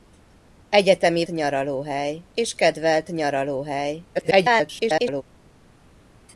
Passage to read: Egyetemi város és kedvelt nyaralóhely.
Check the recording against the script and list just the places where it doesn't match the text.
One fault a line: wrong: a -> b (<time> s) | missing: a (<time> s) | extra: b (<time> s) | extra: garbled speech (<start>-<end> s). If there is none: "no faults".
wrong: város -> nyaralóhely (1.3 s)
extra: garbled speech (4.1-5.2 s)